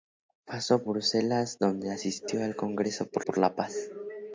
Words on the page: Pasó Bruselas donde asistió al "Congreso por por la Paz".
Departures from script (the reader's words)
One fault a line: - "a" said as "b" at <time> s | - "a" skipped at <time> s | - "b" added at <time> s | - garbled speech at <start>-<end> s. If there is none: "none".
none